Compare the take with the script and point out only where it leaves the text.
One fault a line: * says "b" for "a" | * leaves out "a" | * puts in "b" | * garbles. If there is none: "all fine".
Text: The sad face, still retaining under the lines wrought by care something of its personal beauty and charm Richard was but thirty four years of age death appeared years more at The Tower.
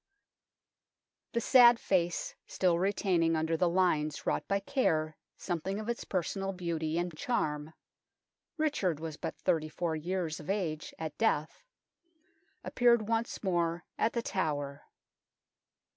* puts in "at"
* says "once" for "years"